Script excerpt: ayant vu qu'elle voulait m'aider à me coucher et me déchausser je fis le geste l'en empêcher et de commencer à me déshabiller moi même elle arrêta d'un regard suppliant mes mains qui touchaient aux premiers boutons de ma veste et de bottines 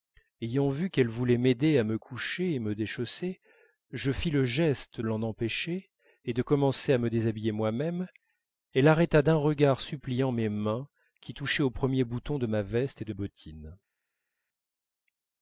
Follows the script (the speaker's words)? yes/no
yes